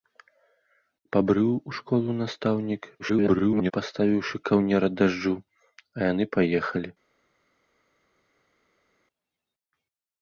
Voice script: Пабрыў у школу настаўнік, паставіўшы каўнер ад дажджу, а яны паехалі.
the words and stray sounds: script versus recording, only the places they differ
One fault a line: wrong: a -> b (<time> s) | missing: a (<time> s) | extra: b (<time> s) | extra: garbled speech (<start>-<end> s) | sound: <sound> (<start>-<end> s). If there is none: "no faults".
extra: garbled speech (3.0-3.7 s)